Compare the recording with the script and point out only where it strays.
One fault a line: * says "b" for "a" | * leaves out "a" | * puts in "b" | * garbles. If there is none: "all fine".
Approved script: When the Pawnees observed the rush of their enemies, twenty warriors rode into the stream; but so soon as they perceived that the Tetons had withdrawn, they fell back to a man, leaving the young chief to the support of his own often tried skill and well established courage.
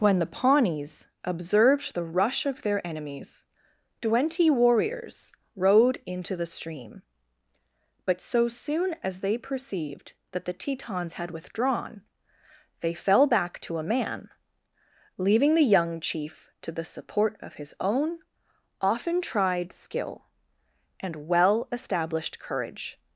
all fine